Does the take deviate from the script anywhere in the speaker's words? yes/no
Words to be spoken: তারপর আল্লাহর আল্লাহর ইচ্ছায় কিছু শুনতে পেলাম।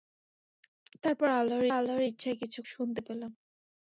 no